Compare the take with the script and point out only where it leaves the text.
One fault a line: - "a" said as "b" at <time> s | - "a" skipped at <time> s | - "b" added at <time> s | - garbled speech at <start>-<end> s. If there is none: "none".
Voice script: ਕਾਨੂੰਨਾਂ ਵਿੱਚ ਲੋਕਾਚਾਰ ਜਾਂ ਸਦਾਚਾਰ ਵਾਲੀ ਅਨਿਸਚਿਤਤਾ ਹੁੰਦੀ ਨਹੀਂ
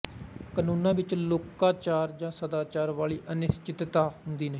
none